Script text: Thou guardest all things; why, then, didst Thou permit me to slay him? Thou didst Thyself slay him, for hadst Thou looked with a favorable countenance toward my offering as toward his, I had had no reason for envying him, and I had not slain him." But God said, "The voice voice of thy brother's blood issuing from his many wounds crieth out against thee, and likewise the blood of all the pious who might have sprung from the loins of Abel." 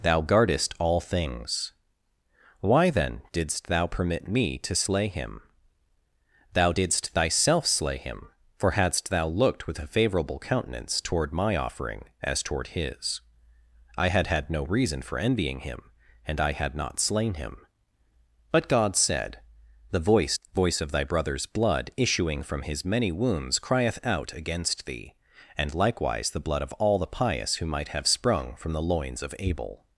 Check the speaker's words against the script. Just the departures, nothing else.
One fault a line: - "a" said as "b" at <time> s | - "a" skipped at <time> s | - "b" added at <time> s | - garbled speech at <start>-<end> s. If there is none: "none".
none